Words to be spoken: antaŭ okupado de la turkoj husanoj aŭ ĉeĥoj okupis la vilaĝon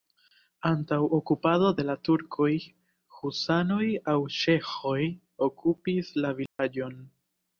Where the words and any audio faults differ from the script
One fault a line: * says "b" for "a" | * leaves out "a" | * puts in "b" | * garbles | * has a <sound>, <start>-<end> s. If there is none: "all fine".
* has a dropout, 6.5-6.6 s